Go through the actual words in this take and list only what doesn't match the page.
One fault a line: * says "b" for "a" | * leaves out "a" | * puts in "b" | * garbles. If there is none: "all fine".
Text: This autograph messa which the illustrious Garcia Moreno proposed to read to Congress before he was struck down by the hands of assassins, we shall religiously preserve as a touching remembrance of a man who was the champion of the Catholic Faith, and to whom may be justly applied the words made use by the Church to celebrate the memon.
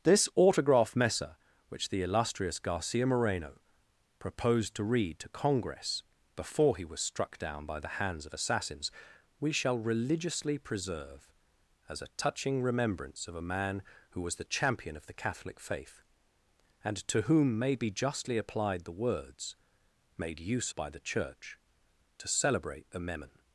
all fine